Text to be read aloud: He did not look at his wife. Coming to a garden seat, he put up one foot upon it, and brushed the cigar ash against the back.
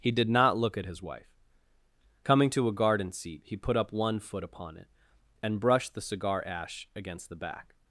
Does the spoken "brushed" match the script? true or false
true